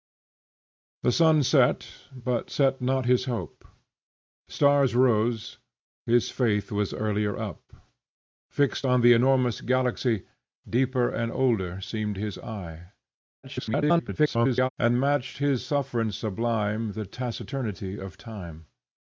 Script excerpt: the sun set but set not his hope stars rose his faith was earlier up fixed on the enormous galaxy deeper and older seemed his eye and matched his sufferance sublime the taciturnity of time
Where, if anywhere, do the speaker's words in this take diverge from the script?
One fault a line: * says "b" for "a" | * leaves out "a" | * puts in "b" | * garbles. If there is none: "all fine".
* garbles